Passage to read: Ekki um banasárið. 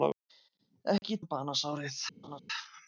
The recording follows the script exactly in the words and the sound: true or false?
false